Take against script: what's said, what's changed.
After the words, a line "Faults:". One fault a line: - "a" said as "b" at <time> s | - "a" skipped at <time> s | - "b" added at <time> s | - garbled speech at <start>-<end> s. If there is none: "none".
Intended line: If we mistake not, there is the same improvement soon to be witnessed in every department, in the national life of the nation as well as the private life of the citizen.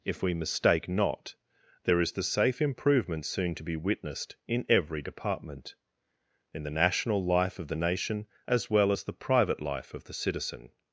If we mistake not, there is the safe improvement soon to be witnessed in every department, in the national life of the nation as well as the private life of the citizen.
Faults:
- "same" said as "safe" at 2.2 s